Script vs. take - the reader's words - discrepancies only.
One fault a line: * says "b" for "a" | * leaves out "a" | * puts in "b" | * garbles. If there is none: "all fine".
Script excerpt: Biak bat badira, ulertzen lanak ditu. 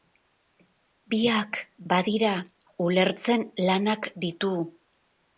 * leaves out "bat"